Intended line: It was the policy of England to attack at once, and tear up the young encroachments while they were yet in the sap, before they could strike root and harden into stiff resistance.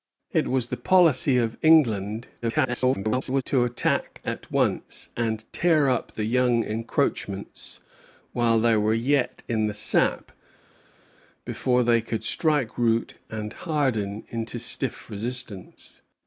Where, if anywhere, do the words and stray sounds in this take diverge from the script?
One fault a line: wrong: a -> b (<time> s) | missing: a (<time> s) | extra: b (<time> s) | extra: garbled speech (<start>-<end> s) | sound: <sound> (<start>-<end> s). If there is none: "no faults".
extra: garbled speech (2.4-3.4 s)